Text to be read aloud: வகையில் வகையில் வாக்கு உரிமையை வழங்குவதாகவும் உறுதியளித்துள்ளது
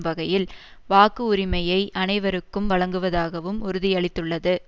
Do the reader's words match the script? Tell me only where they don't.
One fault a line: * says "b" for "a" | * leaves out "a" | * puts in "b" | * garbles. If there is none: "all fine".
* leaves out "வகையில்"
* puts in "அனைவருக்கும்"